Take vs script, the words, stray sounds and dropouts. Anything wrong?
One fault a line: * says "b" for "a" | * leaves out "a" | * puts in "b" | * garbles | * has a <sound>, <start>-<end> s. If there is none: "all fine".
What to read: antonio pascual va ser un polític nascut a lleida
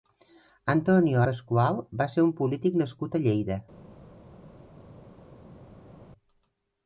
all fine